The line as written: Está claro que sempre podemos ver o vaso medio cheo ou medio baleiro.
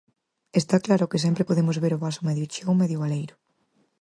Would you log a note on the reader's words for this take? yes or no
no